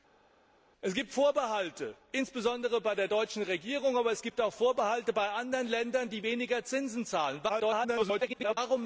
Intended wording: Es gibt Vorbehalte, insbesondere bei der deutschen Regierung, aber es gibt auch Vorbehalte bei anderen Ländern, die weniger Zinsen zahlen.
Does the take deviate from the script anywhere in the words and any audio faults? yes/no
yes